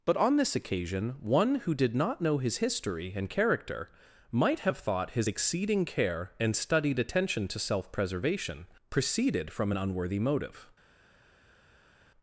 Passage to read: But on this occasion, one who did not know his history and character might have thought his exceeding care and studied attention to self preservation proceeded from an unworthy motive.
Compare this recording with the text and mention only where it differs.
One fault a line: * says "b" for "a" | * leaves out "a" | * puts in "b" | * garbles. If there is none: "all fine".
all fine